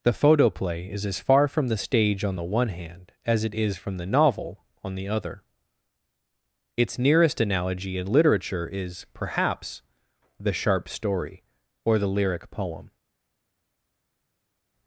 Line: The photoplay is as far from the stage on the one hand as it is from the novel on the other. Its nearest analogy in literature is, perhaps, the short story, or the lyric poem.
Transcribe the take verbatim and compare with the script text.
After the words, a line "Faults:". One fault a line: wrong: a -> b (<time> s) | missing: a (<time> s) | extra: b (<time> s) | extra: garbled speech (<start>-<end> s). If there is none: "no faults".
The photoplay is as far from the stage on the one hand as it is from the novel on the other. Its nearest analogy in literature is, perhaps, the sharp story, or the lyric poem.
Faults:
wrong: short -> sharp (10.5 s)